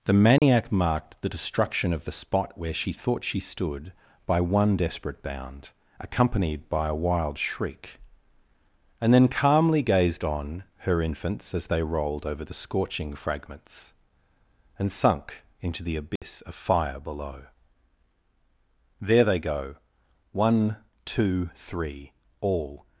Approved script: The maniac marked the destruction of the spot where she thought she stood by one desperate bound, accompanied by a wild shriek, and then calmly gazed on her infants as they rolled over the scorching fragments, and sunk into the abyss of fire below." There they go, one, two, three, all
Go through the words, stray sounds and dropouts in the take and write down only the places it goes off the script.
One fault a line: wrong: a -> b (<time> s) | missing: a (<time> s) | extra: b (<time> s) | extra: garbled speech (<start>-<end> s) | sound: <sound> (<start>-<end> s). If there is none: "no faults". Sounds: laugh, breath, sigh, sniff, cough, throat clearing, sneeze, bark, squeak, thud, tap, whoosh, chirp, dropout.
sound: dropout (0.4-0.4 s)
sound: dropout (16.2-16.2 s)